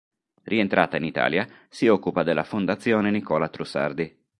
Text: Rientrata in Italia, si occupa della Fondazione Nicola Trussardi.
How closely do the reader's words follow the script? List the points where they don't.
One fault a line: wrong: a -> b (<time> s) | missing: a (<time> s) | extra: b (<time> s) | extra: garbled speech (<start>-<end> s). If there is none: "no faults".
no faults